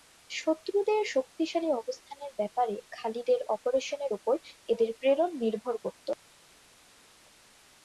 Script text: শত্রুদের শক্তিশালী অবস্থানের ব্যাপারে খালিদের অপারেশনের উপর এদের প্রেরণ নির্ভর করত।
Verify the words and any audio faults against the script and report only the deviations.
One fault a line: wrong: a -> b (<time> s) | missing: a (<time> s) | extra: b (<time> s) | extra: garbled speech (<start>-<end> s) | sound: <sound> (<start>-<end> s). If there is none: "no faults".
no faults